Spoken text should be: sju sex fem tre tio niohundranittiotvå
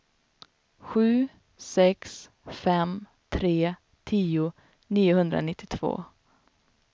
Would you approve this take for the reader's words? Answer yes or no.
yes